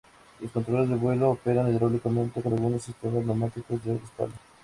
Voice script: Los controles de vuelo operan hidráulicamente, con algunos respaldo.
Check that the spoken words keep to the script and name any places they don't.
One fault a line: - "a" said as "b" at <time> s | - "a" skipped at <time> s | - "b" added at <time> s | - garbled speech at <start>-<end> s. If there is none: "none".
- "sistemas neumáticos de" added at 2.8 s